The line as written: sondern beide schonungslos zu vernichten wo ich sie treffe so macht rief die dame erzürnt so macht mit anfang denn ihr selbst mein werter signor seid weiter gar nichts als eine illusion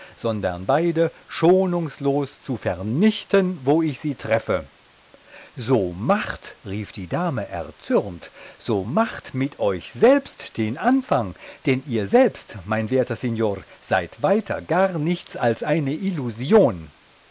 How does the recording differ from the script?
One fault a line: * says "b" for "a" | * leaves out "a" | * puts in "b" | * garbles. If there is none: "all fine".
* puts in "euch selbst den"